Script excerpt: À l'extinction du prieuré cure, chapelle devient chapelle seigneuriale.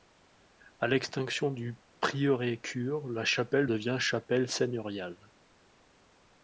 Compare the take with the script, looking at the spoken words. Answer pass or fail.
fail